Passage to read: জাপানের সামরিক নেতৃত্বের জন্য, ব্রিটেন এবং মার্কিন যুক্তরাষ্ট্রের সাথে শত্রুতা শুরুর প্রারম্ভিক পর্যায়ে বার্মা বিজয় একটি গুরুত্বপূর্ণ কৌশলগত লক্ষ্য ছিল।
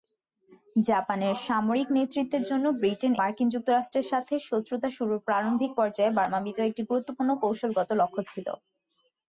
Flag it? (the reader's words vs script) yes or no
yes